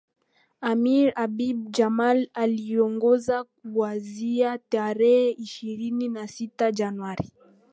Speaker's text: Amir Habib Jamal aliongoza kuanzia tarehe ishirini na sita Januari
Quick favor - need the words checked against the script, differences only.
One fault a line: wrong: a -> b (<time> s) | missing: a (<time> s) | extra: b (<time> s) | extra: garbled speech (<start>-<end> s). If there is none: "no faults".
no faults